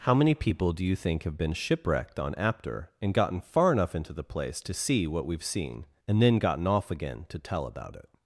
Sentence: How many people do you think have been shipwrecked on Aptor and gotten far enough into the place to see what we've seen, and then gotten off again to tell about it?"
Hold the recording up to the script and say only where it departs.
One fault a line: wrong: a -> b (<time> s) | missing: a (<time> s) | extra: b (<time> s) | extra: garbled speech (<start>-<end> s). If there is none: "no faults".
no faults